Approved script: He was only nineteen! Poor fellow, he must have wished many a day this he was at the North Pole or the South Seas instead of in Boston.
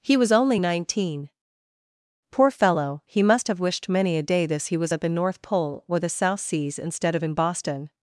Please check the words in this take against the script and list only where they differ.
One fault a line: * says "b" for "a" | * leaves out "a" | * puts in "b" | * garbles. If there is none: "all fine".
all fine